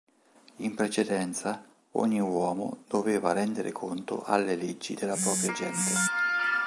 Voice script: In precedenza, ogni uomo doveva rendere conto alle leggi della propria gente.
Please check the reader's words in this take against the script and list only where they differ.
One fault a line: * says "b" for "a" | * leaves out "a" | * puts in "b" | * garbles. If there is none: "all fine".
all fine